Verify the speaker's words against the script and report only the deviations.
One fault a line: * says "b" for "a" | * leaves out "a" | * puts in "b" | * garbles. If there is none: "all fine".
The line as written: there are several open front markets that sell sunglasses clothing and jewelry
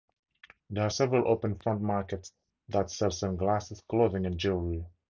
all fine